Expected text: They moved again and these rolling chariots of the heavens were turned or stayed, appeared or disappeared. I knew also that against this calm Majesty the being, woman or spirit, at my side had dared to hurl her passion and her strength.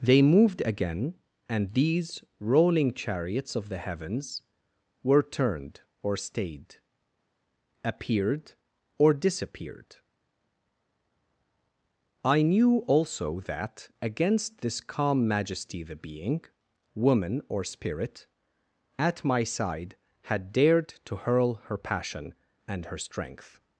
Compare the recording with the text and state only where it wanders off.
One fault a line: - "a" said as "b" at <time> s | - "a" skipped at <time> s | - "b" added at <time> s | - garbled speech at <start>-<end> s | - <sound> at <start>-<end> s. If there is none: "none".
none